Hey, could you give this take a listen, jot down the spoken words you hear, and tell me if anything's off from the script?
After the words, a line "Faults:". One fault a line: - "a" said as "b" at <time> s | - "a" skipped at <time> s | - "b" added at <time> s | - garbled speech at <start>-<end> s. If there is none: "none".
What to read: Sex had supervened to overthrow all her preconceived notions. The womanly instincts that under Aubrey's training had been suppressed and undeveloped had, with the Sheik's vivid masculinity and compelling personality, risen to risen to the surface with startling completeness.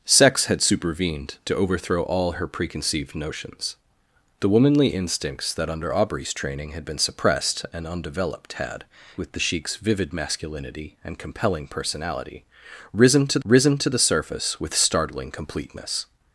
Sex had supervened to overthrow all her preconceived notions. The womanly instincts that under Aubrey's training had been suppressed and undeveloped had, with the Sheik's vivid masculinity and compelling personality, risen to risen to the surface with startling completeness.
Faults:
none